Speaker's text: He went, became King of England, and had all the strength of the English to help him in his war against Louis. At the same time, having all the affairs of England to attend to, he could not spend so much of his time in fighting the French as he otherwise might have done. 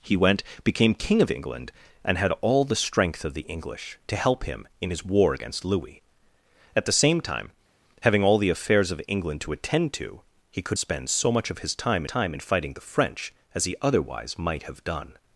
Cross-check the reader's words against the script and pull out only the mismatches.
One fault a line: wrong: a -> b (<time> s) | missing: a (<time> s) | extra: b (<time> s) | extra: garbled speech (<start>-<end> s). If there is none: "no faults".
missing: not (10.8 s)
extra: time (12.1 s)